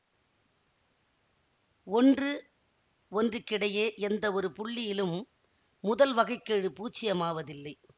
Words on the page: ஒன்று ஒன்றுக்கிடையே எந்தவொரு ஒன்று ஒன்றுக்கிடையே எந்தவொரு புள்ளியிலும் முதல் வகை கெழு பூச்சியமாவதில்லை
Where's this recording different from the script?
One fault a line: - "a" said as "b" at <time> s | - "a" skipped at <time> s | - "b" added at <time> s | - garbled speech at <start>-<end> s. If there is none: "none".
- "ஒன்று ஒன்றுக்கிடையே எந்தவொரு" skipped at 4.5 s